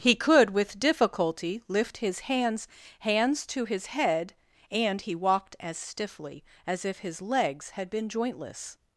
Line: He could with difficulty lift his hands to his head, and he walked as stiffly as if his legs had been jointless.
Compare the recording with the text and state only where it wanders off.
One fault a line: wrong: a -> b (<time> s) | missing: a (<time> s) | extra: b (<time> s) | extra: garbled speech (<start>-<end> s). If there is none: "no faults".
extra: hands (3.0 s)